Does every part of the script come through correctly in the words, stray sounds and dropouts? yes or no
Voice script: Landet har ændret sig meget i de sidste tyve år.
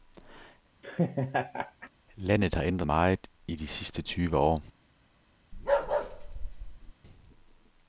no